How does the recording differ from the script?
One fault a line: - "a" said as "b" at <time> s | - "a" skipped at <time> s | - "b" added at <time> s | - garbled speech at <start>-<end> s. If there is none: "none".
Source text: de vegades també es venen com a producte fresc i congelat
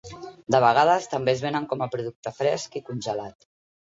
none